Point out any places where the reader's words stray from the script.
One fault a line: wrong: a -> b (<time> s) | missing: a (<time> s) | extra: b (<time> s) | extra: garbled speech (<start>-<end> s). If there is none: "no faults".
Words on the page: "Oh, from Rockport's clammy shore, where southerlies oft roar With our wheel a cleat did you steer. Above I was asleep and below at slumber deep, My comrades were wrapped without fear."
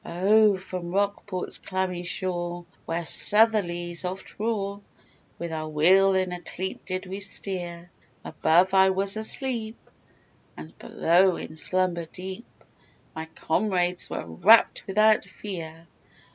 extra: in (6.2 s)
wrong: you -> we (7.0 s)
wrong: at -> in (11.4 s)